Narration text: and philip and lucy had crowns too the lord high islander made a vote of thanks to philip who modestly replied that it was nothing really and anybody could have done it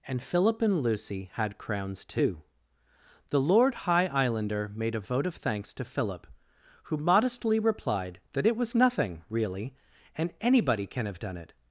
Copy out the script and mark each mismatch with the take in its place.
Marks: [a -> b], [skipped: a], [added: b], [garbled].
and philip and lucy had crowns too the lord high islander made a vote of thanks to philip who modestly replied that it was nothing really and anybody [could -> can] have done it